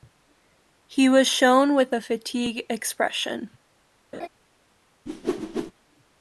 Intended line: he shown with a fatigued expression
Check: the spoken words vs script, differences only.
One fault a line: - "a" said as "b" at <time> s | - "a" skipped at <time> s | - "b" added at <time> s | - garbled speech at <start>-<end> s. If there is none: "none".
- "was" added at 1.1 s